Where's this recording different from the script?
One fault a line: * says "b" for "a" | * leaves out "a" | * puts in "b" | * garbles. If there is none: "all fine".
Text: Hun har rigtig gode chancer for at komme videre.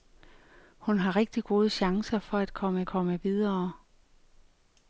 * puts in "komme"